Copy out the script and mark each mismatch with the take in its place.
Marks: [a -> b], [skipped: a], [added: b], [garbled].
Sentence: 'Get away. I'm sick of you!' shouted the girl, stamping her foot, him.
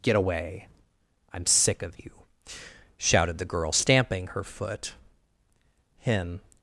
'Get away. I'm sick of you!' shouted the girl, stamping her foot, him.